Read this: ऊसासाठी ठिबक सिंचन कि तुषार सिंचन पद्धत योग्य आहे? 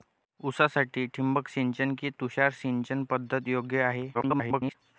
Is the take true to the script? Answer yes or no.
no